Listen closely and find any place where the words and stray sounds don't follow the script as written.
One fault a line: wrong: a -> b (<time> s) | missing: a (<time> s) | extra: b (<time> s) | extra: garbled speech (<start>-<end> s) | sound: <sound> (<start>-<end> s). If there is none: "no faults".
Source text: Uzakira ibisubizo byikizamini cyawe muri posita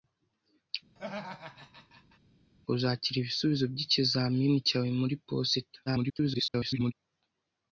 sound: laugh (1.0-2.2 s)
extra: garbled speech (5.9-6.9 s)